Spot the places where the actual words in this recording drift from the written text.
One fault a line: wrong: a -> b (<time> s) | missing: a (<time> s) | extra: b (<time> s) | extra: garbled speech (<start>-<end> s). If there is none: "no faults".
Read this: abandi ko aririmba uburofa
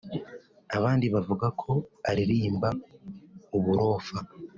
extra: bavuga (1.1 s)